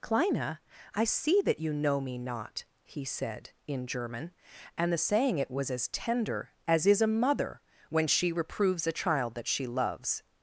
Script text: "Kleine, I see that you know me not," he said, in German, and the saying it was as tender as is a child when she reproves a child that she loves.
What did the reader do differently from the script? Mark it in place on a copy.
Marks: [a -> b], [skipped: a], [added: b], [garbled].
"Kleine, I see that you know me not," he said, in German, and the saying it was as tender as is a [child -> mother] when she reproves a child that she loves.